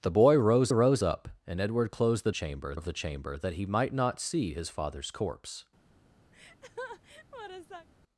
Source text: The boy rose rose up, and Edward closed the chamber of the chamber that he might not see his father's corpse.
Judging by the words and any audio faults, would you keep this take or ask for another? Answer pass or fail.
fail